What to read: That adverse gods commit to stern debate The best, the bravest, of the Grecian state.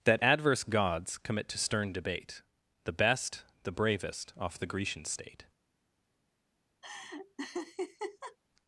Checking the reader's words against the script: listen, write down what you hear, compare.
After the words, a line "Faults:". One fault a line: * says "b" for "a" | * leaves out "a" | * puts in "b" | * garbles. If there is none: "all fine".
That adverse gods commit to stern debate The best, the bravest, off the Grecian state.
Faults:
* says "off" for "of"